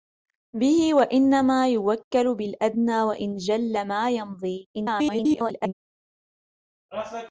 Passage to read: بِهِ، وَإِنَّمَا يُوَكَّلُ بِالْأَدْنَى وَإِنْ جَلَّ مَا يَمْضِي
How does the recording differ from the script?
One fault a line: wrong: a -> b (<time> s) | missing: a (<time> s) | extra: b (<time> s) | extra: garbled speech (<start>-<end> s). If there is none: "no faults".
extra: garbled speech (4.7-5.7 s)